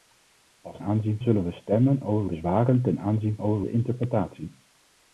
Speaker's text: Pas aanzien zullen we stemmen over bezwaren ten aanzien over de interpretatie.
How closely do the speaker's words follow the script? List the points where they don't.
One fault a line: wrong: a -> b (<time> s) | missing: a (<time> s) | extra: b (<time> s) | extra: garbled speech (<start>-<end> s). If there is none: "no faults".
no faults